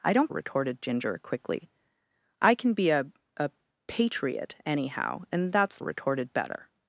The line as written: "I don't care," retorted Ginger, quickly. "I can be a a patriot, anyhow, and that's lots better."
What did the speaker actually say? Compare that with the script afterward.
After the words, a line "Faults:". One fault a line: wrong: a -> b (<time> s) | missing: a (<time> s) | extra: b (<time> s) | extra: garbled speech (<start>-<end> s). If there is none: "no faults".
"I don't," retorted Ginger, quickly. "I can be a a patriot, anyhow, and that's retorted better."
Faults:
missing: care (0.3 s)
wrong: lots -> retorted (5.8 s)